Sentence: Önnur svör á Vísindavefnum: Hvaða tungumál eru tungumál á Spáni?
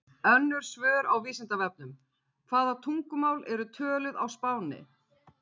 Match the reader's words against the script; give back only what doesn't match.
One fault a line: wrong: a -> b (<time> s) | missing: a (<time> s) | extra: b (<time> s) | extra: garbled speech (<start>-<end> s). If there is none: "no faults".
wrong: tungumál -> töluð (3.8 s)